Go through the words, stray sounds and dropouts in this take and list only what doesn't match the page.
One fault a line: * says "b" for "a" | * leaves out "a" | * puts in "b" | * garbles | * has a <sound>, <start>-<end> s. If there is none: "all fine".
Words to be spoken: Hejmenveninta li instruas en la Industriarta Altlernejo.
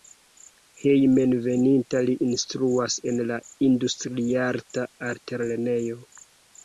all fine